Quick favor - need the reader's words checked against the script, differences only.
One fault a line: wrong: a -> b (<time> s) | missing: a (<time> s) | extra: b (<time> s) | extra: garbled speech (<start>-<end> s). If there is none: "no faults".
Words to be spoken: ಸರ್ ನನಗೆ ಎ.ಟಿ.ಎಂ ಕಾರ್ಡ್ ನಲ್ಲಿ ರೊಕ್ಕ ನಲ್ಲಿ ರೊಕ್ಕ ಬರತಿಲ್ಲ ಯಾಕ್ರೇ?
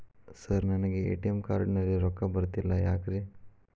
missing: ನಲ್ಲಿ ರೊಕ್ಕ (2.2 s)